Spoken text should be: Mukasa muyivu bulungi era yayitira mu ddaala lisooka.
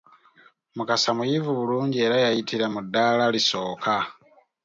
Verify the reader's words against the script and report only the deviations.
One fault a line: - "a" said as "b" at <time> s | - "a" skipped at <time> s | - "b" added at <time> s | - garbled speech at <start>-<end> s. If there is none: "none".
none